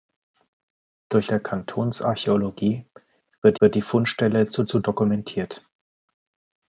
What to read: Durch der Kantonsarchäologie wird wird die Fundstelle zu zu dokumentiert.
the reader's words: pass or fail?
pass